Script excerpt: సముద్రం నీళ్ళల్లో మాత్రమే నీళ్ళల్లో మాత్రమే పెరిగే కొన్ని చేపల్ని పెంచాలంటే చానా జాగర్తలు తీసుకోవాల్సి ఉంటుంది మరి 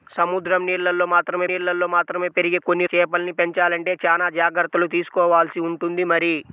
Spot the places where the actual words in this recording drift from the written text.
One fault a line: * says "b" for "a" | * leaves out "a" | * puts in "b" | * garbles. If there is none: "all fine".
all fine